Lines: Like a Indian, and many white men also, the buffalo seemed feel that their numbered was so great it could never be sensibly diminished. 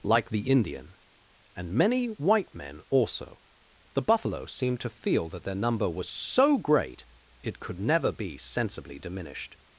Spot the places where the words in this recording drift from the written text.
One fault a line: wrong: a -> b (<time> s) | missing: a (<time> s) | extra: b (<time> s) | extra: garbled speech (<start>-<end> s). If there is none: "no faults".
wrong: a -> the (0.3 s)
extra: to (4.8 s)
wrong: numbered -> number (5.5 s)